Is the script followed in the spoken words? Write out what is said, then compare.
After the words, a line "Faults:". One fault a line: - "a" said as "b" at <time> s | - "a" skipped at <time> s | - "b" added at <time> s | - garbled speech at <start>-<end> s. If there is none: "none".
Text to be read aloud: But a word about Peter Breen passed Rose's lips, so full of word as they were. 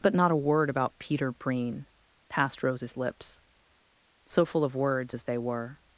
But not a word about Peter Breen passed Rose's lips, so full of words as they were.
Faults:
- "not" added at 0.1 s
- "word" said as "words" at 4.7 s